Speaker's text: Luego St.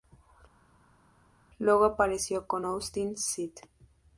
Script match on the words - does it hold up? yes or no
no